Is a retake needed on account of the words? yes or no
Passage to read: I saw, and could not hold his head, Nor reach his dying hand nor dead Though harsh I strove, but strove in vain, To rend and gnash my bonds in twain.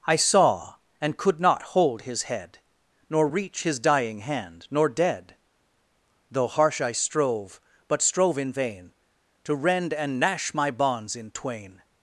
no